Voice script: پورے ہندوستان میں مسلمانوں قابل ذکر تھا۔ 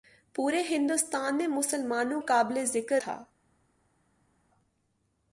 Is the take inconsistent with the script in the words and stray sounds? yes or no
no